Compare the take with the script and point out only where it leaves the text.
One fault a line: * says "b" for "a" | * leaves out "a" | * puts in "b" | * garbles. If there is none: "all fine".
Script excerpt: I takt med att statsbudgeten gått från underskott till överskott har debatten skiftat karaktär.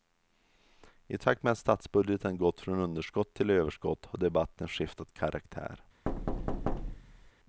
all fine